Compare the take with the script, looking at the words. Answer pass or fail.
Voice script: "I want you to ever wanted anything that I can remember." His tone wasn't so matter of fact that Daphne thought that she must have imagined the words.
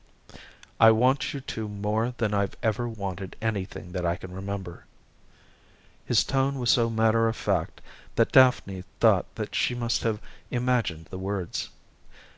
fail